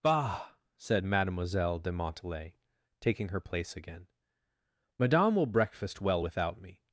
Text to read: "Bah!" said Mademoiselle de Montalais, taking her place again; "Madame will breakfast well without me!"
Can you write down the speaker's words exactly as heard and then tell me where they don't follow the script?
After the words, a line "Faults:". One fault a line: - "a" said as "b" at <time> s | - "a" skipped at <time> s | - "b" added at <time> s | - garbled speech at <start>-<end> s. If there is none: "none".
"Bah!" said Mademoiselle de Montalais, taking her place again; "Madame will breakfast well without me!"
Faults:
none